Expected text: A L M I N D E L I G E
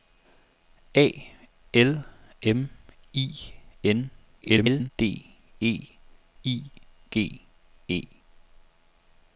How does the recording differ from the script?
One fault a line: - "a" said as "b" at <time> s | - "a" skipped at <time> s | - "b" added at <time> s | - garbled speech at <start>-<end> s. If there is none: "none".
- garbled speech at 4.4-4.9 s
- "L" skipped at 5.9 s